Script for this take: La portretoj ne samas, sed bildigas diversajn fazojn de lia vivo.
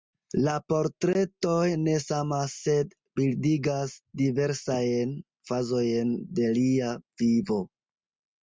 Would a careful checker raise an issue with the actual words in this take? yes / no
no